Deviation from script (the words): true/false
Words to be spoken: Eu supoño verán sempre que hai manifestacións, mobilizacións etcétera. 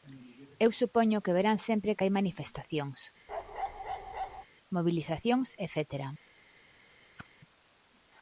true